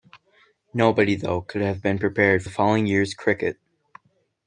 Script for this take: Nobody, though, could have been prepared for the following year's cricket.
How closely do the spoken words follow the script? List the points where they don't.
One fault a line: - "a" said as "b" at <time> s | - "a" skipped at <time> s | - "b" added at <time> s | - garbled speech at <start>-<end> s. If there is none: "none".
- "for" skipped at 2.4 s